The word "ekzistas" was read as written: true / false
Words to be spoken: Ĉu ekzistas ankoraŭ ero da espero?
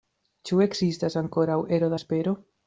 true